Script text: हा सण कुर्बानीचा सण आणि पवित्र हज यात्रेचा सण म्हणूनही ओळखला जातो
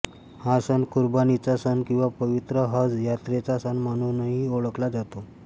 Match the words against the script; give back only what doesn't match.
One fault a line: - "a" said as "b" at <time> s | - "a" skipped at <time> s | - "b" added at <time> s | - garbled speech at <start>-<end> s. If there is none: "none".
- "आणि" said as "किंवा" at 1.9 s